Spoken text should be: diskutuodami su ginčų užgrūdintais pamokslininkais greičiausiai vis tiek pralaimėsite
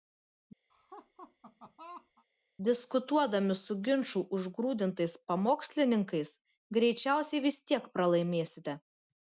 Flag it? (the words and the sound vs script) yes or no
yes